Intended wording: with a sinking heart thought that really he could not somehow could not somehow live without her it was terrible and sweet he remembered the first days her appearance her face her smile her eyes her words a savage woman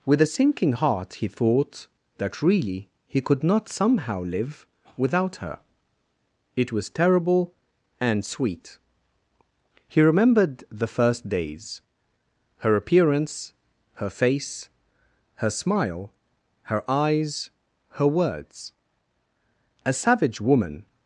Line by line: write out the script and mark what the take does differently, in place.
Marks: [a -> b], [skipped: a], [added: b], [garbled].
with a sinking heart [added: he] thought that really he could not somehow [skipped: could not somehow] live without her it was terrible and sweet he remembered the first days her appearance her face her smile her eyes her words a savage woman